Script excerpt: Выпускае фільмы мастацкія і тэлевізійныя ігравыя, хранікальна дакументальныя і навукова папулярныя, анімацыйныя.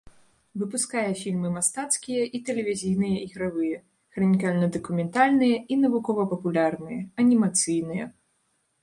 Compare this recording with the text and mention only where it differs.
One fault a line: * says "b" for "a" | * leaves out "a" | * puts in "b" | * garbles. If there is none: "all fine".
all fine